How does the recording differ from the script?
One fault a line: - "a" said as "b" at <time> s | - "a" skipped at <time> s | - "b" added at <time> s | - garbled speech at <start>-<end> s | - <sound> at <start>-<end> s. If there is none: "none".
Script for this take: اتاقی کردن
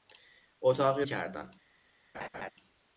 - laugh at 2.1-2.5 s